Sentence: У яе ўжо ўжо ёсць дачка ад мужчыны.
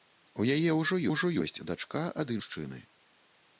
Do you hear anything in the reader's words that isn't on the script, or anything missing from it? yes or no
no